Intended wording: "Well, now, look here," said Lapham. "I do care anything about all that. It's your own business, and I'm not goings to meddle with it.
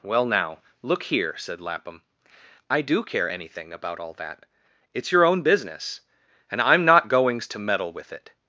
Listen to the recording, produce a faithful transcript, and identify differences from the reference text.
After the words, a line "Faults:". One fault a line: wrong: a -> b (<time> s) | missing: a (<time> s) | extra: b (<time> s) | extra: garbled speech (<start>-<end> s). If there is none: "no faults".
"Well, now, look here," said Lapham. "I do care anything about all that. It's your own business, and I'm not goings to meddle with it.
Faults:
no faults